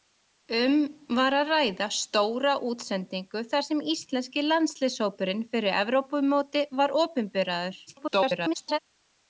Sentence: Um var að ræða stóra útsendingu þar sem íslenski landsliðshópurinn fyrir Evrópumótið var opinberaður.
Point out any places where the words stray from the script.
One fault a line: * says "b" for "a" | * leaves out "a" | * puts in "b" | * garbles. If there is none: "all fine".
* garbles